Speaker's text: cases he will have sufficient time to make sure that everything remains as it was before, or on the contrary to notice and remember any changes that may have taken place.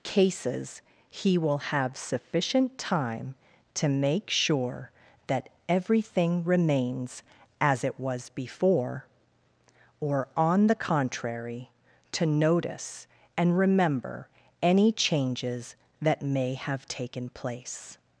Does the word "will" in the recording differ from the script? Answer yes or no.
no